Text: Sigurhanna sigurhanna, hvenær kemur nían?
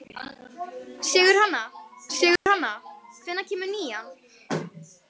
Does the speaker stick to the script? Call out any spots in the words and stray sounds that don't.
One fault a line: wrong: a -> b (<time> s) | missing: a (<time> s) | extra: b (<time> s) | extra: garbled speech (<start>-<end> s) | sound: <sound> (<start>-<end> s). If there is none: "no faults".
sound: dropout (2.4-2.5 s)